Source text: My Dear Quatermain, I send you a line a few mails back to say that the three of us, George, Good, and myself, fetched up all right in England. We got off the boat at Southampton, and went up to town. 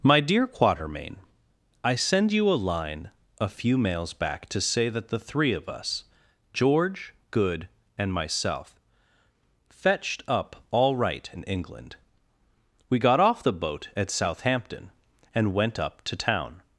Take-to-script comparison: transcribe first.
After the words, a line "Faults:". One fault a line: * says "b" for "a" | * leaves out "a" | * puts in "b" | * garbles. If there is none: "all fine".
My Dear Quatermain, I send you a line a few mails back to say that the three of us, George, Good, and myself, fetched up all right in England. We got off the boat at Southampton, and went up to town.
Faults:
all fine